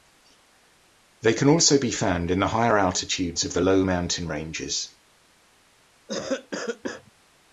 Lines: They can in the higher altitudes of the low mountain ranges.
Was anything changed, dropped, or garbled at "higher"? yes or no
no